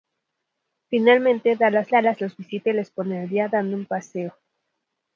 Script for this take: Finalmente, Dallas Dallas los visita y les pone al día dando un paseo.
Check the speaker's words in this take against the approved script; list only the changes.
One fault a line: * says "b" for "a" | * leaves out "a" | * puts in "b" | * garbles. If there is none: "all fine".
all fine